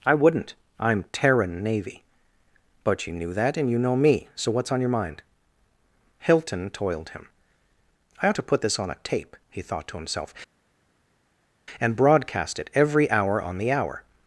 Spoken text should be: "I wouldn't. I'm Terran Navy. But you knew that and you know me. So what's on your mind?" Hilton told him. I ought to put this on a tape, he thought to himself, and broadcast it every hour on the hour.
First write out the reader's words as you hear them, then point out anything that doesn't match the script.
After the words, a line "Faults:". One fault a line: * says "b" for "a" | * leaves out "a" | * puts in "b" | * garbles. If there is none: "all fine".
"I wouldn't. I'm Terran Navy. But you knew that and you know me. So what's on your mind?" Hilton toiled him. I ought to put this on a tape, he thought to himself, and broadcast it every hour on the hour.
Faults:
* says "toiled" for "told"